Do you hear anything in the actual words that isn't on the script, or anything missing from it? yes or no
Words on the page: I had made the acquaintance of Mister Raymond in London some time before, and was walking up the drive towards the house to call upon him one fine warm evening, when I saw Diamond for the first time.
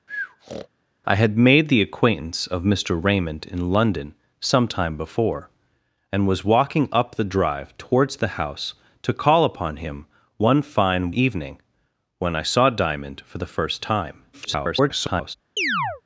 yes